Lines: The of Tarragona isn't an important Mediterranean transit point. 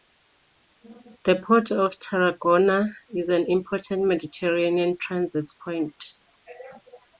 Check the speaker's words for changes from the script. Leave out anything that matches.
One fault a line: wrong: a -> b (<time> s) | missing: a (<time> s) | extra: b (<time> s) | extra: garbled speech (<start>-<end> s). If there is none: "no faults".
extra: port (1.4 s)
wrong: isn't -> is (3.1 s)